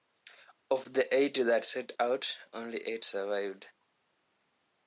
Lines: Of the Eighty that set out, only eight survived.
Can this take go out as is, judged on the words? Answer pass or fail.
pass